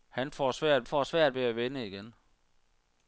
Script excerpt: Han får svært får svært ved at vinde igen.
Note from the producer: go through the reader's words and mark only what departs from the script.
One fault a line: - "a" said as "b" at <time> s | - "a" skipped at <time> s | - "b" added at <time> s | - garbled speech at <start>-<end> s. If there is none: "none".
none